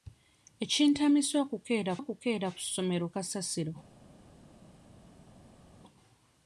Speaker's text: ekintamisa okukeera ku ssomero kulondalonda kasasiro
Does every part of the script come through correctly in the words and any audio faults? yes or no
no